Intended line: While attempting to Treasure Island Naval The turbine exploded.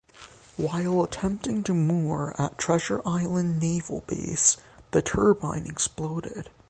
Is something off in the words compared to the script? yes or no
yes